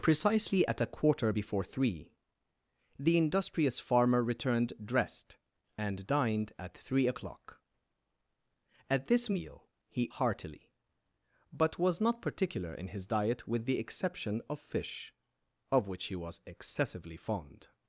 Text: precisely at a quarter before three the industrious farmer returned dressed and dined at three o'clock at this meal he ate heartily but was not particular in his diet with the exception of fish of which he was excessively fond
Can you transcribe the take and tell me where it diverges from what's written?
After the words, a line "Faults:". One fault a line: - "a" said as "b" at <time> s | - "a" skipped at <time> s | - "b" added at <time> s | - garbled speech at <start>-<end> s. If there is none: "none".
precisely at a quarter before three the industrious farmer returned dressed and dined at three o'clock at this meal he heartily but was not particular in his diet with the exception of fish of which he was excessively fond
Faults:
- "ate" skipped at 10.1 s